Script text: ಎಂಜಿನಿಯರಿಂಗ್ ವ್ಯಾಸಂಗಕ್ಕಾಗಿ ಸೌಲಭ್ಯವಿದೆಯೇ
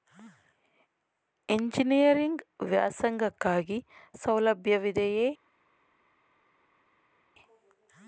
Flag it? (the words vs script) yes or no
no